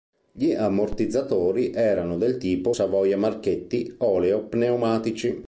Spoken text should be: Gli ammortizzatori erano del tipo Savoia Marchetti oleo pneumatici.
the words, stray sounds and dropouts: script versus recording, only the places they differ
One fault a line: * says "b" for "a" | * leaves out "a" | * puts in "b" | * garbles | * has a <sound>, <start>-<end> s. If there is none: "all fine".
all fine